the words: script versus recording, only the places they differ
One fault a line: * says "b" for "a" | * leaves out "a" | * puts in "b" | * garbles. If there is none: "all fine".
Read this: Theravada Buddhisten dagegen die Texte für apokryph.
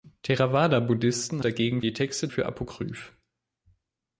all fine